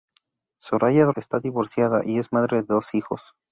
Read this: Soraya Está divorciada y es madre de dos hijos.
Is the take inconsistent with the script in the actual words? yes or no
no